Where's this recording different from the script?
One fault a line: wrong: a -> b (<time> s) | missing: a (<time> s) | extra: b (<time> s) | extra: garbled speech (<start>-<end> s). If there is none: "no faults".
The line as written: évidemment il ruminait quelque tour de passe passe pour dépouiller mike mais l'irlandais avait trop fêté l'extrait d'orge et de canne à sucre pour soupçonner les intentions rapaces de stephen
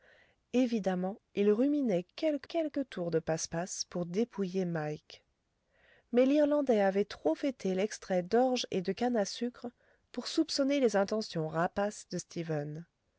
extra: quelque (2.5 s)